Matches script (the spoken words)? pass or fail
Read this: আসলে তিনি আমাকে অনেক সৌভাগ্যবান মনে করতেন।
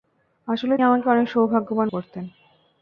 fail